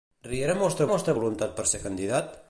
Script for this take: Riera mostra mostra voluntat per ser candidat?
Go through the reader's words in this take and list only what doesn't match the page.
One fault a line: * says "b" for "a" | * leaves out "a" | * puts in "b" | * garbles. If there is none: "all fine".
all fine